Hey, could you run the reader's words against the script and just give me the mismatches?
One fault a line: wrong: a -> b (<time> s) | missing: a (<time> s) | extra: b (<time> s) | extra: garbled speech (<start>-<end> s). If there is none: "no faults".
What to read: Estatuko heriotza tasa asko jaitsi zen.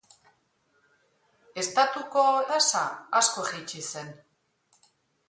missing: heriotza (2.2 s)